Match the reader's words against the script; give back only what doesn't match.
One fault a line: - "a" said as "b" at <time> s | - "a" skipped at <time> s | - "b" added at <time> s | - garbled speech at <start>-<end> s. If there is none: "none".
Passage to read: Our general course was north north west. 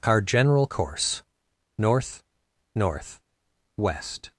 - "was" skipped at 1.2 s